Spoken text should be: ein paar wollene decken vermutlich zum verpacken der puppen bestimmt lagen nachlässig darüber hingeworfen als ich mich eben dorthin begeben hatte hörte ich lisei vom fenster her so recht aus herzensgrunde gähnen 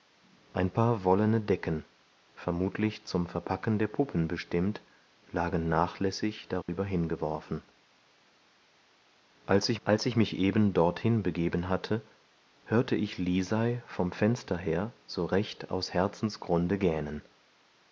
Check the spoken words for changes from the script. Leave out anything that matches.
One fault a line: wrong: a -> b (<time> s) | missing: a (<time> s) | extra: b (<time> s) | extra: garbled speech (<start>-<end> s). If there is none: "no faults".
extra: als ich (9.8 s)